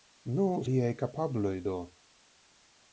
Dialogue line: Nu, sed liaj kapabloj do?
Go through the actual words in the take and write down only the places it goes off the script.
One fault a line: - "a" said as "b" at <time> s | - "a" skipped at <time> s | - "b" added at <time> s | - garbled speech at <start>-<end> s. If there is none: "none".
- "sed" skipped at 0.5 s